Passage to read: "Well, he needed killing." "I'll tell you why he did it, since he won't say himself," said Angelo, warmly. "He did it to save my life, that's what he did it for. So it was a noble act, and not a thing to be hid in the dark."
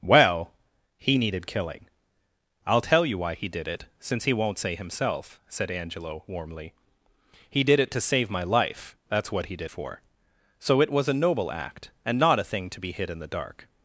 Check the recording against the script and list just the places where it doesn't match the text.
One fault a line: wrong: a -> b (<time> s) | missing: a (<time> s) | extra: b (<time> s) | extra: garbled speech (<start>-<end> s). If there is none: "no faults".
missing: it (9.7 s)